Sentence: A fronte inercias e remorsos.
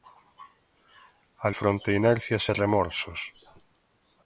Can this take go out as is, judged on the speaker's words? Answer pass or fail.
pass